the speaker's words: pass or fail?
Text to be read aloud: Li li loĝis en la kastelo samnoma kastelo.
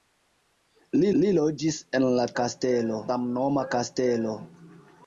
pass